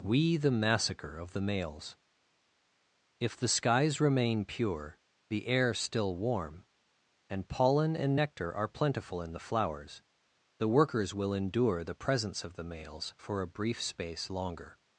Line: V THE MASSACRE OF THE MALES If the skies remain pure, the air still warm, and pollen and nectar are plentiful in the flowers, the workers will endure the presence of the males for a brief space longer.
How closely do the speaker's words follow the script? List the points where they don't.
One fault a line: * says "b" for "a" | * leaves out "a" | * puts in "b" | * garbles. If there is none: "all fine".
* says "We" for "V"